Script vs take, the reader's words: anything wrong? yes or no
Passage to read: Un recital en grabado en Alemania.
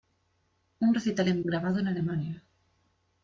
no